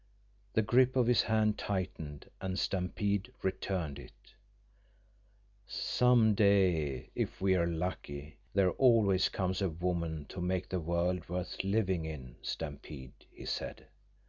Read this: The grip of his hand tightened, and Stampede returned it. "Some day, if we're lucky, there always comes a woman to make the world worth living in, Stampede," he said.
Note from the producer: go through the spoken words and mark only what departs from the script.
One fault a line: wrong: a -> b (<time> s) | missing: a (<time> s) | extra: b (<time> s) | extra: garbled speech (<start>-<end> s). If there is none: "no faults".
no faults